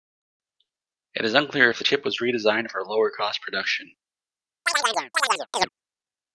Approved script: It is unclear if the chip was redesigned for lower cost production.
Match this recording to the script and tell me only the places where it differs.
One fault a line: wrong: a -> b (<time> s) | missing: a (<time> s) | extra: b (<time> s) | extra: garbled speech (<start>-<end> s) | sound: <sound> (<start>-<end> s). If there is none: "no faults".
sound: chirp (4.7-5.7 s)